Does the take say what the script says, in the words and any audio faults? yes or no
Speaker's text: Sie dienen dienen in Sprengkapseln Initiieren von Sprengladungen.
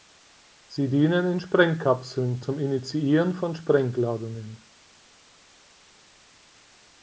no